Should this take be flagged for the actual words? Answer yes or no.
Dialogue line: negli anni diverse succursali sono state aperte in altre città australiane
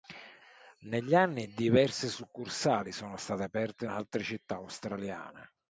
no